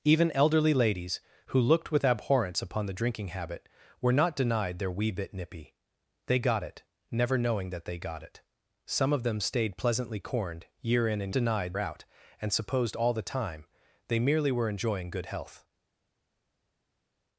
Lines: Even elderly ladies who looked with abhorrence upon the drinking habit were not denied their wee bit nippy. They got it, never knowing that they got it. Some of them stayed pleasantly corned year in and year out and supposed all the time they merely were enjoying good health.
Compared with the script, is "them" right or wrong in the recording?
right